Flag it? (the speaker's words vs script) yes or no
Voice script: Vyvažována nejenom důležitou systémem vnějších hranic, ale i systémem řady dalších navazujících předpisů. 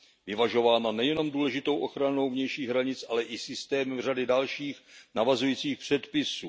yes